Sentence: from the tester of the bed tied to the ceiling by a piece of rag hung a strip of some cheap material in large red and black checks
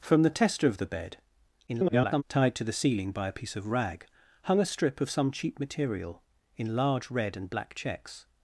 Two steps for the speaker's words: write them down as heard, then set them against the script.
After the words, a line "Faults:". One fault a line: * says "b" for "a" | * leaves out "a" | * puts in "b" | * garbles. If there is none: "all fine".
from the tester of the bed [garbled] tied to the ceiling by a piece of rag hung a strip of some cheap material in large red and black checks
Faults:
* garbles